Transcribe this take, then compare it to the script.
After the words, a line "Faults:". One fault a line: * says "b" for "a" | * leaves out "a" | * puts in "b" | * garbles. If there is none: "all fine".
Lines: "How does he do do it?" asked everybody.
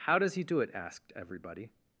"How does he do it?" asked everybody.
Faults:
* leaves out "do"